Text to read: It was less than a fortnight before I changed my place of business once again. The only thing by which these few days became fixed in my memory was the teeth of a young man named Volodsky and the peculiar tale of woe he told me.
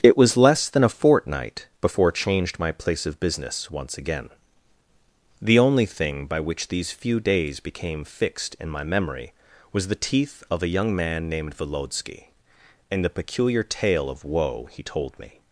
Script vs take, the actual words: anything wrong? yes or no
yes